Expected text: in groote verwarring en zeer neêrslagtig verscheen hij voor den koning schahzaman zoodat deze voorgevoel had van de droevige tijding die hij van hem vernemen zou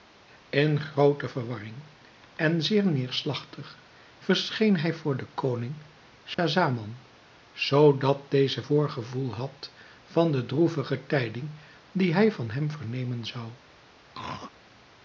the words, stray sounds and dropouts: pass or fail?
fail